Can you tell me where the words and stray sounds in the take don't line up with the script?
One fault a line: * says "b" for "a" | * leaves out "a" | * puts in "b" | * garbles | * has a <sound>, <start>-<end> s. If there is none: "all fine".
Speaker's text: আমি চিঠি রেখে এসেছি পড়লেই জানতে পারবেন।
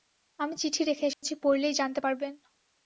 * has a dropout, 1.1-1.2 s